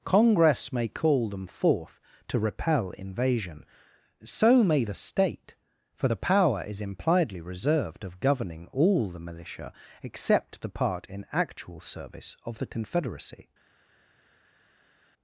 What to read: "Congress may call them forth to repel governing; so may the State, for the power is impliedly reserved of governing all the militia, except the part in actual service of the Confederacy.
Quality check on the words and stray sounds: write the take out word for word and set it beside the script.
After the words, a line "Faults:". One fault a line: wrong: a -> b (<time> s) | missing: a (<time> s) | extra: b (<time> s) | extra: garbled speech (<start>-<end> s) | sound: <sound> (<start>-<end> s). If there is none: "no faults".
"Congress may call them forth to repel invasion; so may the State, for the power is impliedly reserved of governing all the militia, except the part in actual service of the Confederacy.
Faults:
wrong: governing -> invasion (2.9 s)